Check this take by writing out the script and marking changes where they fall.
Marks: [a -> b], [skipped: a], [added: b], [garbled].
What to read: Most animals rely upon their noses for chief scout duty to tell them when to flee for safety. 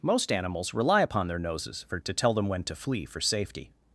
Most animals rely upon their noses for [skipped: chief scout duty] to tell them when to flee for safety.